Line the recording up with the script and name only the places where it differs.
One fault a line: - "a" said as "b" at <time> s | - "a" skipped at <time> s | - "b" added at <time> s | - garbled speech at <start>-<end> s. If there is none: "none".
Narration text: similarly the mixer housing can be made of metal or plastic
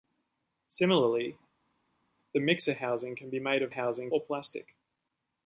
- "metal" said as "housing" at 3.7 s